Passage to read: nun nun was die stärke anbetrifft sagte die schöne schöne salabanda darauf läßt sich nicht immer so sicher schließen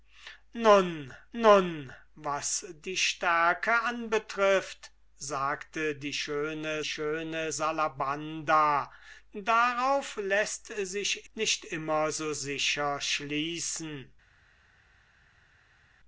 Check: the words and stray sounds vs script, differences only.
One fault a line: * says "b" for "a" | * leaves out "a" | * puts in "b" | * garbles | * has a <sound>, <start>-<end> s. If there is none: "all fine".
all fine